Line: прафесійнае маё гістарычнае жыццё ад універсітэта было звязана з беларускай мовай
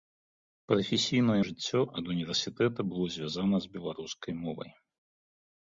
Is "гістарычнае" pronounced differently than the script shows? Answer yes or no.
yes